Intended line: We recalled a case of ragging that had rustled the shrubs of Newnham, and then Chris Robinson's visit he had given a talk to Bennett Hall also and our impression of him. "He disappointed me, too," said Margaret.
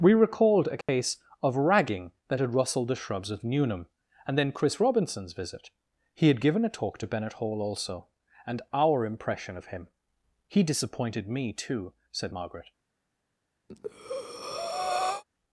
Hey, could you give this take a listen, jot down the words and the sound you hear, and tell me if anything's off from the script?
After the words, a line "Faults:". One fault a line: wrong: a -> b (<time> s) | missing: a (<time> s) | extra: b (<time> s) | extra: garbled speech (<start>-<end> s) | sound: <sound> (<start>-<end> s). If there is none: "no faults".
We recalled a case of ragging that had rustled the shrubs of Newnham, and then Chris Robinson's visit he had given a talk to Bennett Hall also and our impression of him. "He disappointed me, too," said Margaret.
Faults:
sound: dropout (0.8-0.9 s)
sound: breath (13.7-15.2 s)